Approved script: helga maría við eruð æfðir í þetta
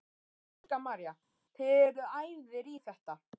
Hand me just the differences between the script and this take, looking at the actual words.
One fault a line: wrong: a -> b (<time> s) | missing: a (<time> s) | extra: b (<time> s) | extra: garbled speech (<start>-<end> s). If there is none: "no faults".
wrong: við -> þið (1.6 s)